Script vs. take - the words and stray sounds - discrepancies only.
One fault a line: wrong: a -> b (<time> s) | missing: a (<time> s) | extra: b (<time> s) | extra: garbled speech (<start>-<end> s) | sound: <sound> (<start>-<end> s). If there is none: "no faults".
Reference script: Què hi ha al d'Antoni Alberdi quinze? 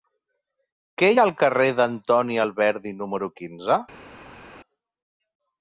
extra: carrer (1.4 s)
extra: número (3.0 s)